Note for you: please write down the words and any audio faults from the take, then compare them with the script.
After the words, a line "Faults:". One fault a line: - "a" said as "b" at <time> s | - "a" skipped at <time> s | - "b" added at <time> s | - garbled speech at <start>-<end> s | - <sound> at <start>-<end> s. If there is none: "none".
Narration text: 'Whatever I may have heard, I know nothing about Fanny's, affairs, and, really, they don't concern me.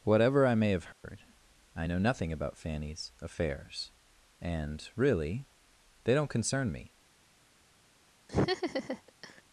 'Whatever I may have heard, I know nothing about Fanny's, affairs, and, really, they don't concern me.
Faults:
- dropout at 0.9-1.0 s
- laugh at 8.3-9.4 s